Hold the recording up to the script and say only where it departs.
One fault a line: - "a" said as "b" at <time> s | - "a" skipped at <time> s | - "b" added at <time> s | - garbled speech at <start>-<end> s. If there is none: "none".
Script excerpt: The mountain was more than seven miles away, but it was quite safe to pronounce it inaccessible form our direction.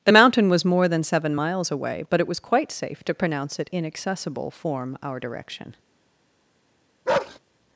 none